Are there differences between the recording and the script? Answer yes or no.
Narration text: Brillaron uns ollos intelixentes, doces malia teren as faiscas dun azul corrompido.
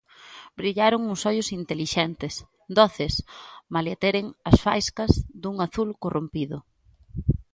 no